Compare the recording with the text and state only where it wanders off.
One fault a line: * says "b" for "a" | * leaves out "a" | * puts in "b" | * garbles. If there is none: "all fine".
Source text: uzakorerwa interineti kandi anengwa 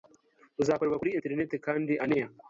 * puts in "kuri"